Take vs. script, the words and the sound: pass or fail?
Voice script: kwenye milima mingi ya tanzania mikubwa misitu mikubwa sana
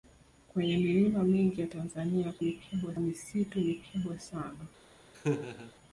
fail